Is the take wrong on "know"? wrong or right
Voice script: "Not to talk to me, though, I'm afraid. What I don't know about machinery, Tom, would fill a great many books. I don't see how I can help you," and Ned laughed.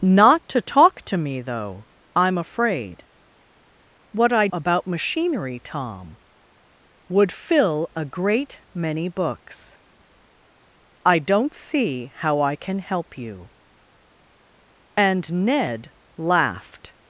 wrong